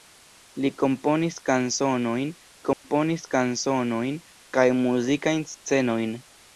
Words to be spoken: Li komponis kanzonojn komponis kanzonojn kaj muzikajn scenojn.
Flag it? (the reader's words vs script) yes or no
no